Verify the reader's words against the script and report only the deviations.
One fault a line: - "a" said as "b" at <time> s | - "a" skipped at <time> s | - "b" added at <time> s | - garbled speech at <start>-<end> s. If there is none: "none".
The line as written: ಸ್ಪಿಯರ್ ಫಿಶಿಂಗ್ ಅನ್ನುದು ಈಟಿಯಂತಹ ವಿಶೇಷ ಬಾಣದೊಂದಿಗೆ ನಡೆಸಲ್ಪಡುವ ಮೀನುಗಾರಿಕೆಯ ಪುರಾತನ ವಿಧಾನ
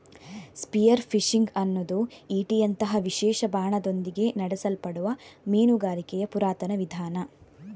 none